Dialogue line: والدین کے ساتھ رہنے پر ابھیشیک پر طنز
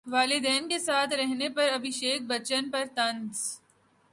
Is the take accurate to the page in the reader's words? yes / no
no